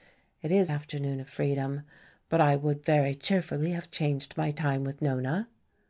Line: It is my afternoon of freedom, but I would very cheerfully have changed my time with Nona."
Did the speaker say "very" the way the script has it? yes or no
yes